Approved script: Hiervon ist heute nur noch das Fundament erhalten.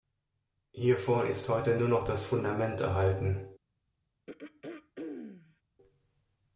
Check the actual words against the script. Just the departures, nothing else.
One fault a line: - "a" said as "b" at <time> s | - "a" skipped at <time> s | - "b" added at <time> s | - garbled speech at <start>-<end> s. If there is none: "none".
none